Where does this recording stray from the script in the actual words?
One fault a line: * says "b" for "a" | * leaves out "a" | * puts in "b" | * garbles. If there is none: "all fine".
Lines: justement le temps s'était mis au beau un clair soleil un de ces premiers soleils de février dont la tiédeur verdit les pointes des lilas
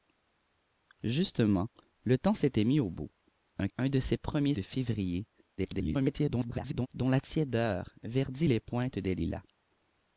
* leaves out "clair soleil"
* leaves out "soleils"
* garbles